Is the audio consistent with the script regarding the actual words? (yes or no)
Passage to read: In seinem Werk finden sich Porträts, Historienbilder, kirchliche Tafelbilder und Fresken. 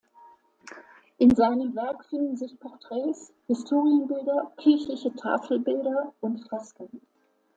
yes